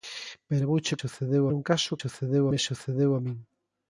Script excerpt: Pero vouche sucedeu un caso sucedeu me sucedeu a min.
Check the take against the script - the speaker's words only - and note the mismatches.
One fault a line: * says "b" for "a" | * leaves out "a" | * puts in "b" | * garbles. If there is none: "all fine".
all fine